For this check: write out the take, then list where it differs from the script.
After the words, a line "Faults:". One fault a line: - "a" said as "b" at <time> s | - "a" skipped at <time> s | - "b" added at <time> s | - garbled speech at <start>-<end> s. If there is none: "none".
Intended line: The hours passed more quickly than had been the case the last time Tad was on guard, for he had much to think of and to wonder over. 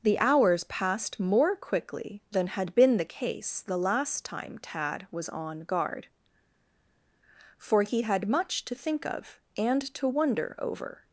The hours passed more quickly than had been the case the last time Tad was on guard, for he had much to think of and to wonder over.
Faults:
none